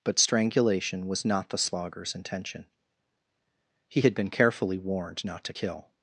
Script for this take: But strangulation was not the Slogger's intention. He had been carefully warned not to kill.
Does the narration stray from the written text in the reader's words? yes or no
no